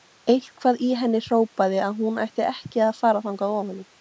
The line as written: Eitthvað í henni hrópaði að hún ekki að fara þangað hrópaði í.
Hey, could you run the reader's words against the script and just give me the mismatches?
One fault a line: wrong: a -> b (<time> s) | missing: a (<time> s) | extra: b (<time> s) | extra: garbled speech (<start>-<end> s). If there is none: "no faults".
extra: ætti (2.2 s)
wrong: hrópaði -> ofan (3.6 s)